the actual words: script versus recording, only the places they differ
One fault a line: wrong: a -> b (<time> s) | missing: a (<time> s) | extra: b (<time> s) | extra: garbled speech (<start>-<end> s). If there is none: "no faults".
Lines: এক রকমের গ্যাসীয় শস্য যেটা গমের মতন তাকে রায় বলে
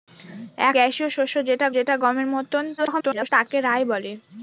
missing: রকমের (0.8 s)
extra: যেটা (1.8 s)
extra: garbled speech (2.8-3.3 s)